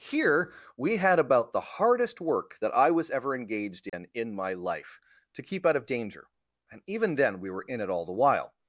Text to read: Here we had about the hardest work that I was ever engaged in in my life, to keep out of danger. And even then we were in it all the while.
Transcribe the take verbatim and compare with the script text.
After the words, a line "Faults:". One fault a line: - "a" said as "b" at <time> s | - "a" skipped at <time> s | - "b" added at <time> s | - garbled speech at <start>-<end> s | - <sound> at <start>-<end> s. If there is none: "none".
Here we had about the hardest work that I was ever engaged in in my life, to keep out of danger. And even then we were in it all the while.
Faults:
- dropout at 3.9-3.9 s